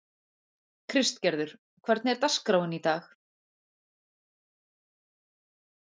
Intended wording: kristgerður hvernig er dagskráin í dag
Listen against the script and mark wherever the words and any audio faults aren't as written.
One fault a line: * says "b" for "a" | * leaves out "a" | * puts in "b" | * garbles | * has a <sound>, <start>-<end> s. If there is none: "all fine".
all fine